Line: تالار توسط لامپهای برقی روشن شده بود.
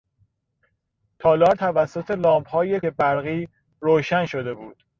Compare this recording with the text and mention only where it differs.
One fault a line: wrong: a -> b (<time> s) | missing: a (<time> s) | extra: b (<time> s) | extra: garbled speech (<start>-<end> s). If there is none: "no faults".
no faults